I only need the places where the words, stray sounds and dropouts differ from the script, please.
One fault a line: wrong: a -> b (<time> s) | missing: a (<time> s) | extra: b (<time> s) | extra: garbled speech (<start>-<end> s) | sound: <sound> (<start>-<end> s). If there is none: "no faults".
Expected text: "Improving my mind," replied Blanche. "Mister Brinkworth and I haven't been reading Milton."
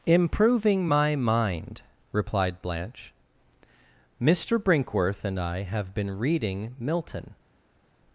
wrong: haven't -> have (5.6 s)